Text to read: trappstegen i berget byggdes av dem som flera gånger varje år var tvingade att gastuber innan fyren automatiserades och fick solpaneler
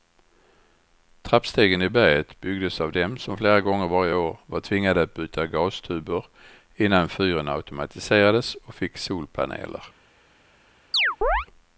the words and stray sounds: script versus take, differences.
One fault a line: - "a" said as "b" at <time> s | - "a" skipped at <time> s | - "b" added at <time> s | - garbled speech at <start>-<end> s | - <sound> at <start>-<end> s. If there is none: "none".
- "byta" added at 5.1 s
- chirp at 10.9-11.5 s